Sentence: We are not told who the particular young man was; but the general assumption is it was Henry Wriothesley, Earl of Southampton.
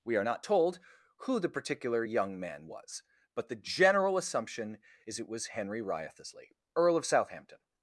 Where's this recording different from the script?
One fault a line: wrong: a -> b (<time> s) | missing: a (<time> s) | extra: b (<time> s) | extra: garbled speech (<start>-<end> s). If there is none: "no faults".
no faults